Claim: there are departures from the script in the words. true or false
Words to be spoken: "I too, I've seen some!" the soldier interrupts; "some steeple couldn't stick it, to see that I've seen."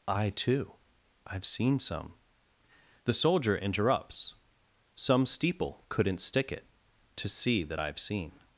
false